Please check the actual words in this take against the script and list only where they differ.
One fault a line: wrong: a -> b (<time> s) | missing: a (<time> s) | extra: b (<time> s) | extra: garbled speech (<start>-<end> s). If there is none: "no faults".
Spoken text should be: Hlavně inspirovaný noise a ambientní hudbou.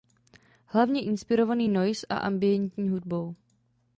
no faults